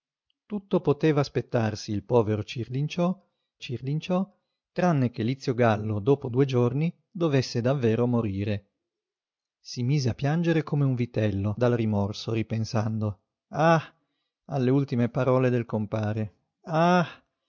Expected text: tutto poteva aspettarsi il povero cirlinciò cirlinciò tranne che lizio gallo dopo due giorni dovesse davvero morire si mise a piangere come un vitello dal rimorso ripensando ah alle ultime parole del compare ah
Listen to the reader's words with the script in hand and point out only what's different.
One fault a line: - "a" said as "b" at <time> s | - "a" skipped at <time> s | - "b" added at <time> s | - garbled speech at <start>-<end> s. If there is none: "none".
none